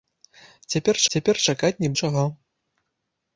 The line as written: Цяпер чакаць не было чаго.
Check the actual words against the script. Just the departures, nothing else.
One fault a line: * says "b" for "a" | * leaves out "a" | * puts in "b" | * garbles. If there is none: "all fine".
* puts in "цяпер"
* leaves out "было"